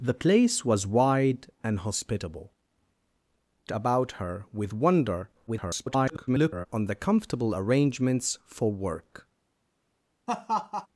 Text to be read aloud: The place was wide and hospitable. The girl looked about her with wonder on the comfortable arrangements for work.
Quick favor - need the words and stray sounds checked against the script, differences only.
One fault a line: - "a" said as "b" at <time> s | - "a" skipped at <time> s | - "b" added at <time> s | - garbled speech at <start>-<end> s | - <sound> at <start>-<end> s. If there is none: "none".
- "The girl looked" skipped at 2.5 s
- garbled speech at 5.5-6.7 s
- laugh at 10.3-10.9 s